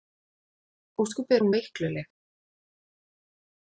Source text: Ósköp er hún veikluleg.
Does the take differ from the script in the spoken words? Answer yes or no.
no